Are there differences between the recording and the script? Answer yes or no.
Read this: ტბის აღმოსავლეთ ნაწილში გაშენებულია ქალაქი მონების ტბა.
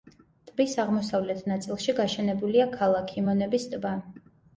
no